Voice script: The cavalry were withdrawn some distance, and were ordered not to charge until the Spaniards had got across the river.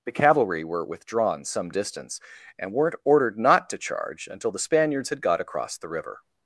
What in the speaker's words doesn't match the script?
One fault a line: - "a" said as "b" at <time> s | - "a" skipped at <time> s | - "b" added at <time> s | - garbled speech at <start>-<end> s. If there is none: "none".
- "were" said as "weren't" at 2.7 s